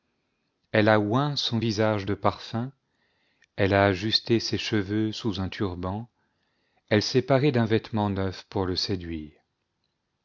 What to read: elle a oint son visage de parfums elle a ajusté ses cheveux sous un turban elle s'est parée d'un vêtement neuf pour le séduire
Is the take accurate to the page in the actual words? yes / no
yes